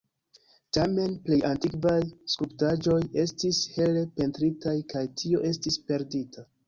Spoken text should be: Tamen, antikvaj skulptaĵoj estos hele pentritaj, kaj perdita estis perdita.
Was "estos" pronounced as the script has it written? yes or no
no